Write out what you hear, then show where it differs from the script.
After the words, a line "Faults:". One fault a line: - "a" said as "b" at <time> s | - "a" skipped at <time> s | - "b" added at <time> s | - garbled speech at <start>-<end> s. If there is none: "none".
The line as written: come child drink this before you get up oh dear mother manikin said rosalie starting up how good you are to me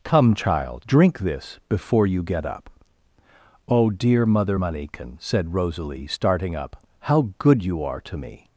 come child drink this before you get up oh dear mother manikin said rosalie starting up how good you are to me
Faults:
none